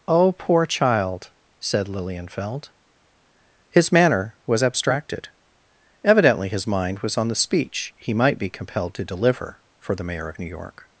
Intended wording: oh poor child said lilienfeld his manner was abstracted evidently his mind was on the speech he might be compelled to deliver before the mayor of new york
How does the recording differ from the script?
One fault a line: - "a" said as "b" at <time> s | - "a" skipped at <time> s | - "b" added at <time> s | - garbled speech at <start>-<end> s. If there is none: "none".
- "before" said as "for" at 9.8 s